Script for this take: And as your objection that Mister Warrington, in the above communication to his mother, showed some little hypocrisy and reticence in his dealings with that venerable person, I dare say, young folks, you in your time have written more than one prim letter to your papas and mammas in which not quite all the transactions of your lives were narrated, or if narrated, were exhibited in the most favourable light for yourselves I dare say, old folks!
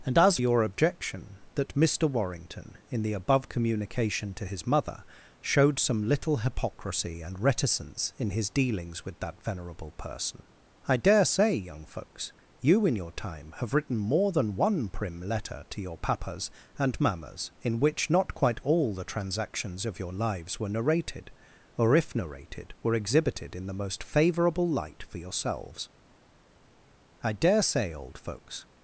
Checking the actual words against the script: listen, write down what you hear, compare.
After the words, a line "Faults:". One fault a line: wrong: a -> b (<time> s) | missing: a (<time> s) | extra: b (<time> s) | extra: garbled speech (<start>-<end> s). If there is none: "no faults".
And as your objection that Mister Warrington, in the above communication to his mother, showed some little hypocrisy and reticence in his dealings with that venerable person, I dare say, young folks, you in your time have written more than one prim letter to your papas and mammas in which not quite all the transactions of your lives were narrated, or if narrated, were exhibited in the most favourable light for yourselves I dare say, old folks!
Faults:
no faults